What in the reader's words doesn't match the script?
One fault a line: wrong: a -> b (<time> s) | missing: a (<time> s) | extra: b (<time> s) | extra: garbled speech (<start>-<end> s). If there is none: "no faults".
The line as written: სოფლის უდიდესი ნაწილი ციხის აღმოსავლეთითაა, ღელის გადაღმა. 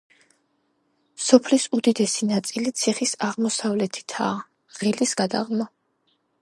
no faults